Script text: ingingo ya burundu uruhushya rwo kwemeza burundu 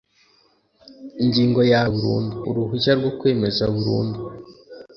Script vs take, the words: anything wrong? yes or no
no